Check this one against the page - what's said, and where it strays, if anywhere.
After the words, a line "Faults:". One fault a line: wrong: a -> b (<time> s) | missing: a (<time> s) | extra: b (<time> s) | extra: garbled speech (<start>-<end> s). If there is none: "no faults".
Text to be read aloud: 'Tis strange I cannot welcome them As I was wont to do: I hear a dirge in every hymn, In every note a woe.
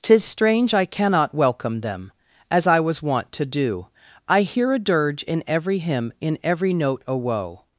'Tis strange I cannot welcome them As I was wont to do: I hear a dirge in every hymn, In every note a woe.
Faults:
no faults